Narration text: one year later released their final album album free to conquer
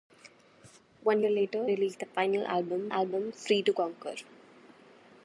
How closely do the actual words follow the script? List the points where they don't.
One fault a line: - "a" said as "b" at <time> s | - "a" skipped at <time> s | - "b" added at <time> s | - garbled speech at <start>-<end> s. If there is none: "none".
none